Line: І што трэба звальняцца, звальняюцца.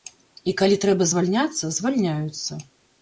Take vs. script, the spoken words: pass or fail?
fail